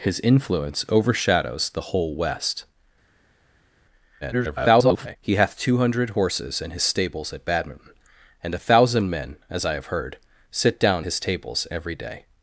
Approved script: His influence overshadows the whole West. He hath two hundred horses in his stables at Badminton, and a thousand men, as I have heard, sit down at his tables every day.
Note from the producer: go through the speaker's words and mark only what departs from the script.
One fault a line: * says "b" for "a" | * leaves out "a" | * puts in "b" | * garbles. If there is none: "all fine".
* garbles
* leaves out "at"